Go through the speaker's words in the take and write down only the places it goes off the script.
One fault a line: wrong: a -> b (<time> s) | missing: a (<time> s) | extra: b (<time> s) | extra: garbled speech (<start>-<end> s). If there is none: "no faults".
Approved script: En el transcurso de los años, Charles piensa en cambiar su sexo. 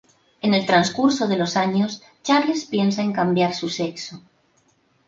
no faults